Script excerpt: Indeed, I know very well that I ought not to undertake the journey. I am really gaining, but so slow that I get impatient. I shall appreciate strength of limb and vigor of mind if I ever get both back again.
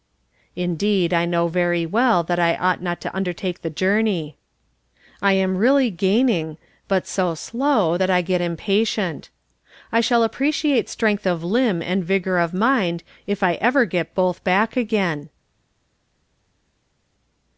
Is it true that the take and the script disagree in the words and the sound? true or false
false